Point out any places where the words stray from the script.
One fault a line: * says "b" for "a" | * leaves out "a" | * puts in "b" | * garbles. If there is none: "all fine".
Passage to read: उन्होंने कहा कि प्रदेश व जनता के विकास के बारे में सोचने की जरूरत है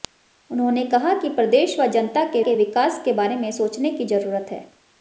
* puts in "के"